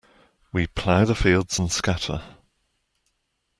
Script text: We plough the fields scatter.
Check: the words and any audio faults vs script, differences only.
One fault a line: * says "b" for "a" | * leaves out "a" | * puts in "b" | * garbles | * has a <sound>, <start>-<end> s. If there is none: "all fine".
* puts in "and"